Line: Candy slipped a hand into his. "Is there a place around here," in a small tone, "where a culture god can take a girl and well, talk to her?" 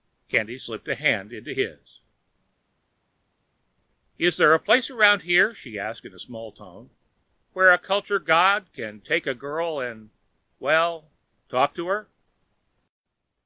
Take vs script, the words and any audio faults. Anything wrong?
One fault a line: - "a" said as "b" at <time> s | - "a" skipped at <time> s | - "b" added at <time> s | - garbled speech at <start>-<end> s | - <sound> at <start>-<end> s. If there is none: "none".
- "she asked" added at 5.5 s